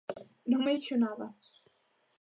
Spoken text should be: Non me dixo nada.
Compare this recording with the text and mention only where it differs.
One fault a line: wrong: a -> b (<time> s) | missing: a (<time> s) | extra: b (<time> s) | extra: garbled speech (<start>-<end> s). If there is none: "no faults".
no faults